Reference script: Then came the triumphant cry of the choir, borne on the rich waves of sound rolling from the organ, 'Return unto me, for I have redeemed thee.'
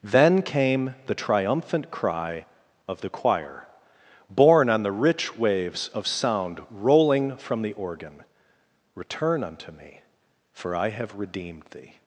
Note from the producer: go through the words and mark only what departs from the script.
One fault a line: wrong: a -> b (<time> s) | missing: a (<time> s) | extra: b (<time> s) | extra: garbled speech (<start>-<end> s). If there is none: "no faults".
no faults